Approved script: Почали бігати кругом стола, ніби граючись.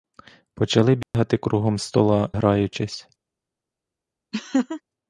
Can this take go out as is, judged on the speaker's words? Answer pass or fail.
fail